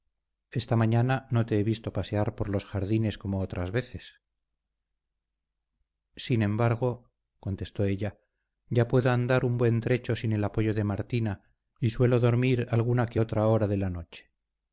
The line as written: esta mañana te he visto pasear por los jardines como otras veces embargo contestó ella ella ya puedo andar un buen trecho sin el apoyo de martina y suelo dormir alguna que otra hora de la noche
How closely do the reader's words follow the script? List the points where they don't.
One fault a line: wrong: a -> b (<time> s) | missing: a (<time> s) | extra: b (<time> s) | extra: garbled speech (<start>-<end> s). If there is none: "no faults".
extra: no (1.3 s)
extra: sin (6.2 s)
missing: ella (8.2 s)